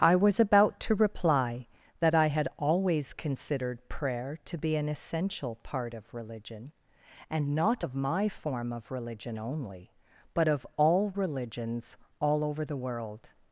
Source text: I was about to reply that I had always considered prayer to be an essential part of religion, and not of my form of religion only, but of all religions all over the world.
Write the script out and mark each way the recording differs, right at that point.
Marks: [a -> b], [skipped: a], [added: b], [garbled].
I was about to reply that I had always considered prayer to be an essential part of religion, and not of my form of religion only, but of all religions all over the world.